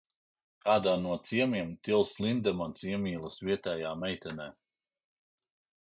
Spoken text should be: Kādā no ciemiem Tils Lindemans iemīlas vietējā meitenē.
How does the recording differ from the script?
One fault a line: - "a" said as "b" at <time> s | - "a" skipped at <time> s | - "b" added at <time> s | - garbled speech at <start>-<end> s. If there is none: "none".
none